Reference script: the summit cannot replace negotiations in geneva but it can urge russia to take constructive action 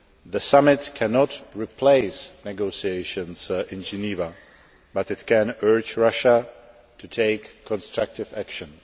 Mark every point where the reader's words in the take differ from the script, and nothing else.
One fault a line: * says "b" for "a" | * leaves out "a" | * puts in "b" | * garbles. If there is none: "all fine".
all fine